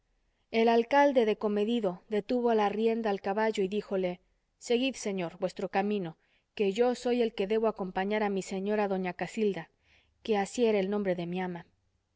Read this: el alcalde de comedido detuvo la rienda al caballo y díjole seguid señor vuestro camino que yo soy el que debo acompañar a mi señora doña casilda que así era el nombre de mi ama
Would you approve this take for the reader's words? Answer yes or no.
yes